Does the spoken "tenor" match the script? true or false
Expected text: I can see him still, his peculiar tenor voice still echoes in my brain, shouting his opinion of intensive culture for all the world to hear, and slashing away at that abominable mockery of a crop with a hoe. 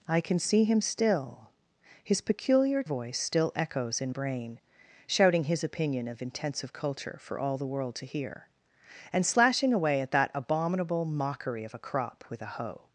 false